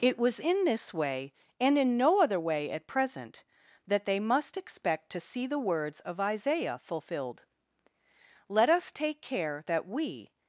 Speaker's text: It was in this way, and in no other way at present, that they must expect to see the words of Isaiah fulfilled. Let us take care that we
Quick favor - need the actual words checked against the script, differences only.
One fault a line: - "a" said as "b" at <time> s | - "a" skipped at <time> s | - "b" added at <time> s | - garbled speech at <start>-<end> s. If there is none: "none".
none